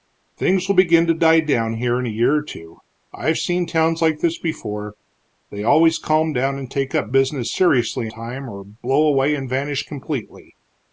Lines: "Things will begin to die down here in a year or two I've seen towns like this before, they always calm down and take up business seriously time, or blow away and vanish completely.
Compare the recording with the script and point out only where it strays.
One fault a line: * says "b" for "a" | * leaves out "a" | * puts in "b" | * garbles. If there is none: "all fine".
all fine